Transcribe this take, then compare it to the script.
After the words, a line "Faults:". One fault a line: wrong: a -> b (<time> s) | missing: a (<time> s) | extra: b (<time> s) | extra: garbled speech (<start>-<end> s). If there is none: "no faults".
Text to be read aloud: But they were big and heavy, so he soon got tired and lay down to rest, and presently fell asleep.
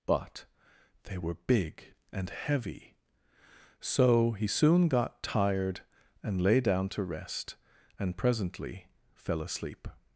But they were big and heavy, so he soon got tired and lay down to rest, and presently fell asleep.
Faults:
no faults